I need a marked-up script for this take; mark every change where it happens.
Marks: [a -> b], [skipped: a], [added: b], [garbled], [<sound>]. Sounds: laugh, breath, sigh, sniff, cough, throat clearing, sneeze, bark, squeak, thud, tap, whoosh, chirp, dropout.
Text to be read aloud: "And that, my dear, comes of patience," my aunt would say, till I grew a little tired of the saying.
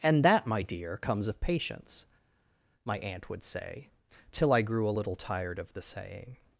"And that, my dear, comes of patience," my aunt would say, till I grew a little tired of the saying.